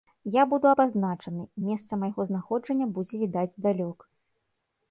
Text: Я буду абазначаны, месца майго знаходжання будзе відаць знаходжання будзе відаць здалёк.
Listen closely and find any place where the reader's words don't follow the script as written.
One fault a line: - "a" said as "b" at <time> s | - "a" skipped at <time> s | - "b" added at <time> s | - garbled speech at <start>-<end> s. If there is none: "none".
- "знаходжання будзе відаць" skipped at 3.6 s